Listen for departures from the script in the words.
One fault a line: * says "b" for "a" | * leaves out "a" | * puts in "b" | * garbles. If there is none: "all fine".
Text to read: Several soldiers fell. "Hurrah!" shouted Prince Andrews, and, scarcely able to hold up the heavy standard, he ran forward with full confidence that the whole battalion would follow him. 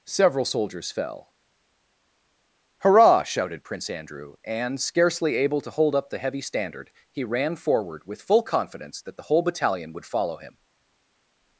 * says "Andrew" for "Andrews"